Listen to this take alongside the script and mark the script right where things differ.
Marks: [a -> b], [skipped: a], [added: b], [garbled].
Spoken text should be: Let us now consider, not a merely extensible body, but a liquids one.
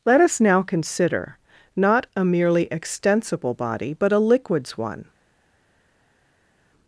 Let us now consider, not a merely extensible body, but a liquids one.